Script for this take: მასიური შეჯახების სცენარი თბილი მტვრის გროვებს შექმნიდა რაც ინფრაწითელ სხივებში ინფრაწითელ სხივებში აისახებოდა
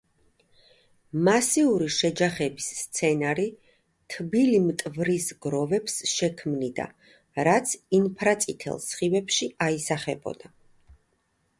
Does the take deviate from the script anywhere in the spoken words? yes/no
yes